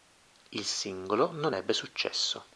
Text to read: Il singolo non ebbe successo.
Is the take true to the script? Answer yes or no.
yes